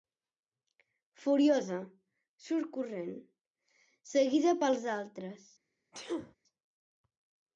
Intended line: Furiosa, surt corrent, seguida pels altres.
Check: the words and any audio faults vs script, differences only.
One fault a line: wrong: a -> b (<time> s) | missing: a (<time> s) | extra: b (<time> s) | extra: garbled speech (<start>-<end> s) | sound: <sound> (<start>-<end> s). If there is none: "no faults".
sound: sneeze (5.9-6.3 s)